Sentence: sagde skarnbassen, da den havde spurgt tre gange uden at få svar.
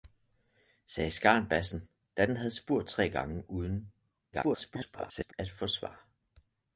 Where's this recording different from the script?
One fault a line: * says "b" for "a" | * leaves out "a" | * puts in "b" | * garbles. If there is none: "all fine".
* garbles